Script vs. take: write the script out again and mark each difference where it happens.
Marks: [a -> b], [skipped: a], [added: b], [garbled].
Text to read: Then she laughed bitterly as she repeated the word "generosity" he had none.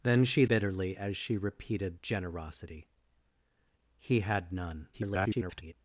Then she [skipped: laughed] bitterly as she repeated [skipped: the word] "generosity" he had none. [garbled]